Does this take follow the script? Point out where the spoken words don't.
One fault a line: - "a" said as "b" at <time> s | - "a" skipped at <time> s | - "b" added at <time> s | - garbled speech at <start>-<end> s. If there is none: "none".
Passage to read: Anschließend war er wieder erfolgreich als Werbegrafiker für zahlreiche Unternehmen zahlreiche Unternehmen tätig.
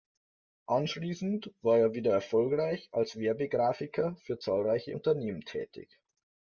- "zahlreiche Unternehmen" skipped at 5.4 s